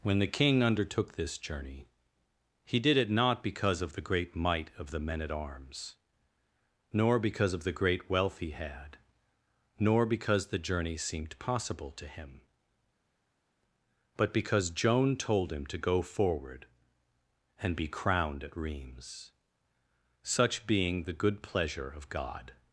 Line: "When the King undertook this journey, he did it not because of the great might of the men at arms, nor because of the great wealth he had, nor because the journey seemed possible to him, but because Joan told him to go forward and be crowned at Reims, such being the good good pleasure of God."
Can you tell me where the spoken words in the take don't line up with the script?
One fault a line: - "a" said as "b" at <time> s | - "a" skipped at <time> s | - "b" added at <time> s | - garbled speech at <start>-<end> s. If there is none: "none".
- "good" skipped at 21.4 s